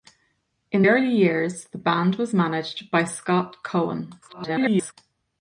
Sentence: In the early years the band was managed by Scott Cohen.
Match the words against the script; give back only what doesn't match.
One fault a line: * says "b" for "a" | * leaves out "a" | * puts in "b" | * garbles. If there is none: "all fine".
* leaves out "the"
* garbles